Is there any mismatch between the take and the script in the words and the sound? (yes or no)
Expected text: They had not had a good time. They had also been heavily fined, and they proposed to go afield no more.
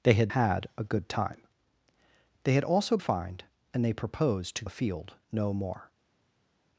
yes